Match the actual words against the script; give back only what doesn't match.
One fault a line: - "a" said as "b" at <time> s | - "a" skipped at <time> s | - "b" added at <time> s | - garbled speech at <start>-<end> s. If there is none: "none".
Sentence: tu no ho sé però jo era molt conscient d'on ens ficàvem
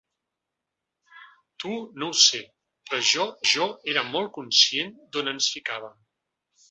- "jo" added at 3.5 s